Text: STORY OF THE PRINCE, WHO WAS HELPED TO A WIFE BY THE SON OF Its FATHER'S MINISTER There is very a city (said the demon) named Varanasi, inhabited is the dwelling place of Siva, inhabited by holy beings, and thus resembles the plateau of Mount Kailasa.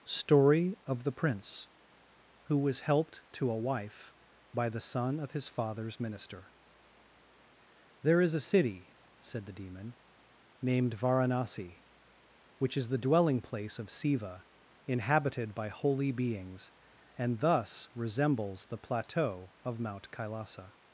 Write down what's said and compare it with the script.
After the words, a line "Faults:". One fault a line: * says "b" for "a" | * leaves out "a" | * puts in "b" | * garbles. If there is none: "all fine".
STORY OF THE PRINCE, WHO WAS HELPED TO A WIFE BY THE SON OF HIS FATHER'S MINISTER There is a city (said the demon) named Varanasi, which is the dwelling place of Siva, inhabited by holy beings, and thus resembles the plateau of Mount Kailasa.
Faults:
* says "HIS" for "Its"
* leaves out "very"
* says "which" for "inhabited"